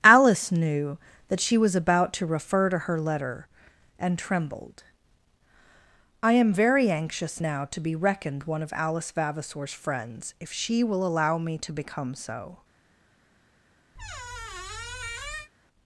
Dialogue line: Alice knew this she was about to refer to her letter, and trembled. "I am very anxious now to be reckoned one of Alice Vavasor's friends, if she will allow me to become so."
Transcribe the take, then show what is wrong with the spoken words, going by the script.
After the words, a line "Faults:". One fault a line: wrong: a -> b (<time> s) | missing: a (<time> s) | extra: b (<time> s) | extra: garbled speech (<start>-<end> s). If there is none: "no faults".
Alice knew that she was about to refer to her letter, and trembled. "I am very anxious now to be reckoned one of Alice Vavasor's friends, if she will allow me to become so."
Faults:
wrong: this -> that (1.3 s)